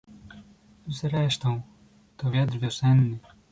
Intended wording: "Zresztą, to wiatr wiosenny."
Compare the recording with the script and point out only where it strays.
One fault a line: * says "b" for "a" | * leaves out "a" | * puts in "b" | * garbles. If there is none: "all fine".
all fine